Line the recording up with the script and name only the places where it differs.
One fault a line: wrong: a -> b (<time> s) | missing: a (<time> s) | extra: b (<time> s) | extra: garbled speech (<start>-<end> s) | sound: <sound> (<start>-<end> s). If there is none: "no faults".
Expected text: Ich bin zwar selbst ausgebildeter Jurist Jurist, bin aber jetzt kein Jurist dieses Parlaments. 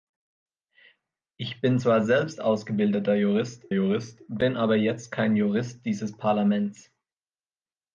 no faults